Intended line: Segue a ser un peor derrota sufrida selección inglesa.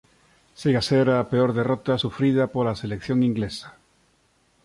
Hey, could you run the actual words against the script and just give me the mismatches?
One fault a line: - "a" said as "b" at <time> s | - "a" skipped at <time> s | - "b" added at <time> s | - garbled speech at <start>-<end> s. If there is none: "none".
- "un" said as "a" at 1.1 s
- "pola" added at 2.5 s